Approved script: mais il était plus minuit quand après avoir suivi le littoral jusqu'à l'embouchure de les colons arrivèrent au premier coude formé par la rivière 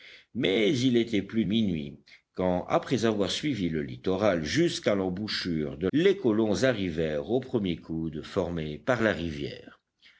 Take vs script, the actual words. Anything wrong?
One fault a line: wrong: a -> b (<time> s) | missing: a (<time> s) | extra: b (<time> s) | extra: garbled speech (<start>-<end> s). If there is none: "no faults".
no faults